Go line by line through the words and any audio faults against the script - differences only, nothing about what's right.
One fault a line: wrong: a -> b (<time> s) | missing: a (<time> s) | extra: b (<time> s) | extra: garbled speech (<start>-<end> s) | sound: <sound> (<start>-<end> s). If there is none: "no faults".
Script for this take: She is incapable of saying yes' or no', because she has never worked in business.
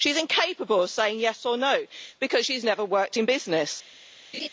sound: laugh (4.3-4.5 s)